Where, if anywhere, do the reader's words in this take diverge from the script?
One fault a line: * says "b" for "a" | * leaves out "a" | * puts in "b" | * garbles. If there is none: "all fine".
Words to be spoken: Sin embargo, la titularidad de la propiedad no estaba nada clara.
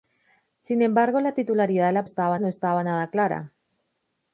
* says "estaba" for "propiedad"